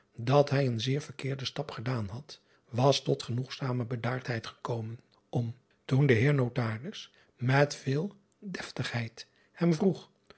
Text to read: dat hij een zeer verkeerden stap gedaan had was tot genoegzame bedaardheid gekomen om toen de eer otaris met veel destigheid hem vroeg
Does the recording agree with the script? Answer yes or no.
yes